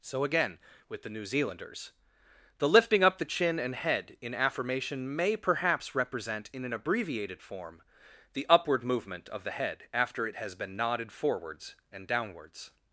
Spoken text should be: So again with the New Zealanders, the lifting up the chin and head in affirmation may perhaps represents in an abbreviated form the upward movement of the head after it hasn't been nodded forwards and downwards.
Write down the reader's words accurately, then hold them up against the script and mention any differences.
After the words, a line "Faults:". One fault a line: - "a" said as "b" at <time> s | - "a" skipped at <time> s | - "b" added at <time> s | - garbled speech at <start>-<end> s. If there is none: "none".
So again with the New Zealanders, the lifting up the chin and head in affirmation may perhaps represent in an abbreviated form the upward movement of the head after it has been nodded forwards and downwards.
Faults:
- "represents" said as "represent" at 6.0 s
- "hasn't" said as "has" at 10.4 s